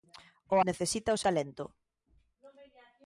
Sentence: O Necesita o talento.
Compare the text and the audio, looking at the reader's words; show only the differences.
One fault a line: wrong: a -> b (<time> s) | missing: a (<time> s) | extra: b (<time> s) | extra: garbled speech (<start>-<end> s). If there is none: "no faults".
no faults